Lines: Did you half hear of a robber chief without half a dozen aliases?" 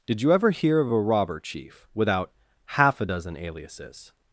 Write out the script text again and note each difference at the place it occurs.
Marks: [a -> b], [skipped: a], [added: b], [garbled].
Did you [half -> ever] hear of a robber chief without half a dozen aliases?"